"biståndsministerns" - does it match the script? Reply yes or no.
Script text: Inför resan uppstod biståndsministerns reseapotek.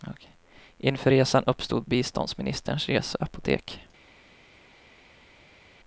yes